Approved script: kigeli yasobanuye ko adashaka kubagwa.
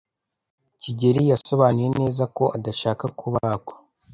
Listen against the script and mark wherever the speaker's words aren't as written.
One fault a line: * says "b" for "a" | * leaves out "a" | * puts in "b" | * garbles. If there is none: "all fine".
* puts in "neza"